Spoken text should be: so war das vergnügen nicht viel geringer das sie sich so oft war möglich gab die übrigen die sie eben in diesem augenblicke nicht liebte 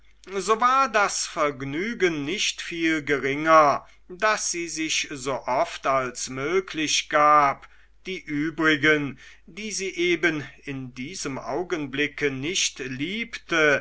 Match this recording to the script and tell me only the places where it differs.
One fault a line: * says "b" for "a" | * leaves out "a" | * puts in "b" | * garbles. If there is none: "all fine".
* says "als" for "war"